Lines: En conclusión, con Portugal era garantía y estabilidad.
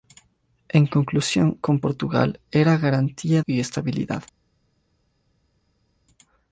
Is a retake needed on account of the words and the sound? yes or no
no